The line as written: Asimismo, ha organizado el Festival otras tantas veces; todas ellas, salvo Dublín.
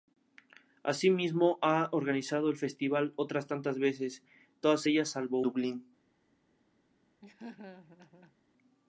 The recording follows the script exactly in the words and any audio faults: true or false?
false